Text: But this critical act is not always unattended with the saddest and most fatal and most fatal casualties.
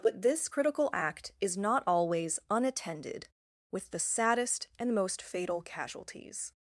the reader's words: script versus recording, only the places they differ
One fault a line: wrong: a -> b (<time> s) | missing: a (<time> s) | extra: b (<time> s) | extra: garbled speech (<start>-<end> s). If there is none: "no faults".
missing: and most fatal (5.6 s)